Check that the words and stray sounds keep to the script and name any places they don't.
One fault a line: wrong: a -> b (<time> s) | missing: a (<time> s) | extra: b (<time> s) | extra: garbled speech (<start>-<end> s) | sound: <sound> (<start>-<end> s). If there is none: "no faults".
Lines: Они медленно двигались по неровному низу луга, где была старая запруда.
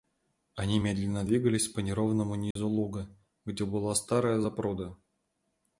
sound: dropout (2.5-2.6 s)